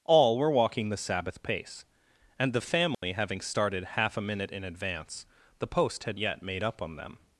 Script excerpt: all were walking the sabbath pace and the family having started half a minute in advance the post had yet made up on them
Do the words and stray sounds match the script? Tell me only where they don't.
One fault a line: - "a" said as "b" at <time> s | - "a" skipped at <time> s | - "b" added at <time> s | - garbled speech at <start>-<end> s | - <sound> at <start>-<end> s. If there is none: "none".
- dropout at 2.9-3.0 s